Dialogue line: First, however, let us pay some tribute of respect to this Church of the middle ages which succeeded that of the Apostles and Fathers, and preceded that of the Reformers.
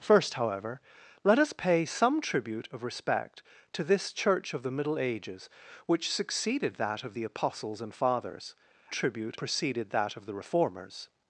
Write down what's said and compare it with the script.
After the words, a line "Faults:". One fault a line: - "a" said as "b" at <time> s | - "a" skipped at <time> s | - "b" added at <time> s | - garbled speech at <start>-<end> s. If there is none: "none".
First, however, let us pay some tribute of respect to this Church of the middle ages which succeeded that of the Apostles and Fathers, tribute preceded that of the Reformers.
Faults:
- "and" said as "tribute" at 8.9 s